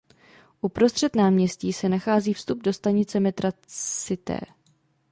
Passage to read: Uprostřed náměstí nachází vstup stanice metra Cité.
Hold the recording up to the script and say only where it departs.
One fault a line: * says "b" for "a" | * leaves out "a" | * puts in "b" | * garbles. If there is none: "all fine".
* puts in "se"
* puts in "do"